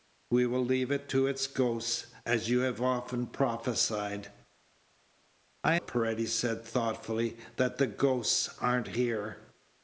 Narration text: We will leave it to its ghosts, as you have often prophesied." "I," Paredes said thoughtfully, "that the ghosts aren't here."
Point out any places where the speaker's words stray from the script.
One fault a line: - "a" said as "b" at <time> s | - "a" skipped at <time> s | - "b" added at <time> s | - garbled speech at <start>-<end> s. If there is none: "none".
none